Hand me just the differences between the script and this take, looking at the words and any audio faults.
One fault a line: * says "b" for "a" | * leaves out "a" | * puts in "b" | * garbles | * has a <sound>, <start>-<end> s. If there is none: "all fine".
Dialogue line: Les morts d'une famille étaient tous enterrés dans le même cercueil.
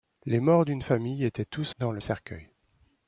* leaves out "enterrés"
* leaves out "même"